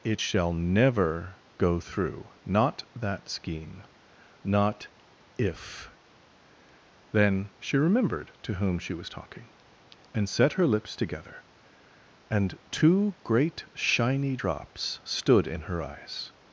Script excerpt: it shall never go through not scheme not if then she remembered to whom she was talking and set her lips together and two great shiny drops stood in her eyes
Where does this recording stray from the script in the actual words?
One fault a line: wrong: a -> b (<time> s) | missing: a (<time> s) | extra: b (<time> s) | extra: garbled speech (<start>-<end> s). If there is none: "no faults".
extra: that (2.9 s)